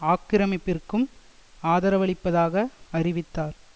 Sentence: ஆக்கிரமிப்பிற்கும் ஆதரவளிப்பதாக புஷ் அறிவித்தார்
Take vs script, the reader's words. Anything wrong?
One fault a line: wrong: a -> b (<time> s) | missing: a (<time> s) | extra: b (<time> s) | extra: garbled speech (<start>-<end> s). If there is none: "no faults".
missing: புஷ் (2.6 s)